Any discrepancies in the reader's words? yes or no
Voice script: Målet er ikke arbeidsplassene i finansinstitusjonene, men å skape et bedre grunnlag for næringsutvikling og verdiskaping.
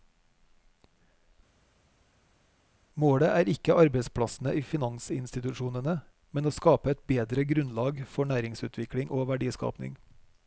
no